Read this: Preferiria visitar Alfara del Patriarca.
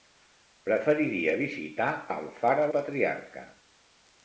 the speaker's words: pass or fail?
fail